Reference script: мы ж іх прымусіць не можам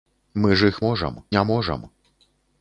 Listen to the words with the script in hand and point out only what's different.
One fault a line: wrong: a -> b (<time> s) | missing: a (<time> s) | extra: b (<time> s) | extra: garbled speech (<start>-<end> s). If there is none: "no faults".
wrong: прымусіць -> можам (0.9 s)